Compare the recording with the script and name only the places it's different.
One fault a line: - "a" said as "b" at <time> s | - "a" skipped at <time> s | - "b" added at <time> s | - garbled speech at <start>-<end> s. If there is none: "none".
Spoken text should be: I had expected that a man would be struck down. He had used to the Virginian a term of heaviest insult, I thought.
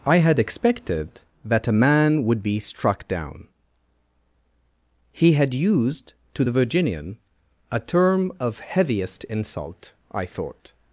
none